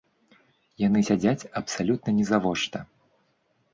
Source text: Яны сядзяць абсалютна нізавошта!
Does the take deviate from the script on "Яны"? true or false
false